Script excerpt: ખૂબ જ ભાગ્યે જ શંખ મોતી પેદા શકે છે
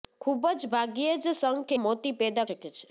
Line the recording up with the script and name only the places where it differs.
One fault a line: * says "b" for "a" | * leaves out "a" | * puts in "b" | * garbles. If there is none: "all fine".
all fine